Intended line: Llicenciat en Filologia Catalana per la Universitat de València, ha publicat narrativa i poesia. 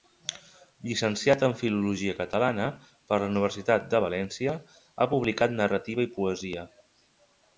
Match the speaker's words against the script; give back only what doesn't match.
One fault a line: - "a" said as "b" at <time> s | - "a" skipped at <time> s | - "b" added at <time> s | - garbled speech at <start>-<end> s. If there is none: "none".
none